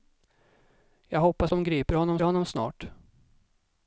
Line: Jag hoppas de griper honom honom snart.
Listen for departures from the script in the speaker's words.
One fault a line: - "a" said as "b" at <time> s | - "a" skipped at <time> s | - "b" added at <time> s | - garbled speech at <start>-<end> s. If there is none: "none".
none